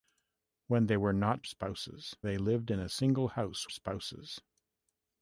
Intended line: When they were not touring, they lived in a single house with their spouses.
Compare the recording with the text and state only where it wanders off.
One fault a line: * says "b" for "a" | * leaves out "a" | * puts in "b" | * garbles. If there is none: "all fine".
* says "spouses" for "touring"
* leaves out "with their"